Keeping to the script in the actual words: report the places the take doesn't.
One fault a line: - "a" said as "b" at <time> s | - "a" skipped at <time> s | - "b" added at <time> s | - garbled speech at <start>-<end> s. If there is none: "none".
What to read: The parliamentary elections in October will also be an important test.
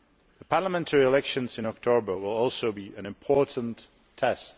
none